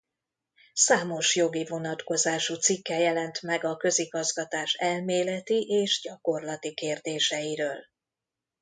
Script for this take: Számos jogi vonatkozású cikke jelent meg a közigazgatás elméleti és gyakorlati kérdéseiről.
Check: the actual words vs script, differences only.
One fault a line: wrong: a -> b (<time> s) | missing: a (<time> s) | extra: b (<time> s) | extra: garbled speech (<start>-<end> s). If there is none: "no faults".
no faults